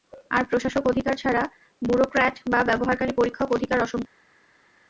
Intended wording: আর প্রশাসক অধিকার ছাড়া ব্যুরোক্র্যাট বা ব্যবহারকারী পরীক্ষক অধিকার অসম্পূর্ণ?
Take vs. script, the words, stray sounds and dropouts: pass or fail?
pass